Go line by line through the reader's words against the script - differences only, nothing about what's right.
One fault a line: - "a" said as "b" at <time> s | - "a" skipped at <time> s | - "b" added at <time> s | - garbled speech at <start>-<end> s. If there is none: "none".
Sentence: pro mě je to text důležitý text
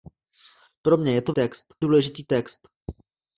none